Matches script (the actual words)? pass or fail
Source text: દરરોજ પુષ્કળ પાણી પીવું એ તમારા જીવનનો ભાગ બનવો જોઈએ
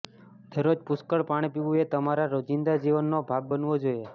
fail